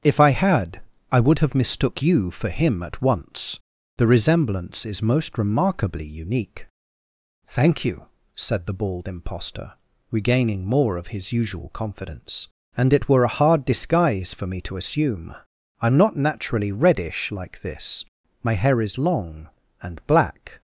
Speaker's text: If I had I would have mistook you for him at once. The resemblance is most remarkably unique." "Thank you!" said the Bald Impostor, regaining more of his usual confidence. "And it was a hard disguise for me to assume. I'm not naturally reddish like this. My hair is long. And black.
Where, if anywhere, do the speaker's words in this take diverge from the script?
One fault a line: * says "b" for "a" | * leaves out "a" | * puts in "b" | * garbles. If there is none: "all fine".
* says "were" for "was"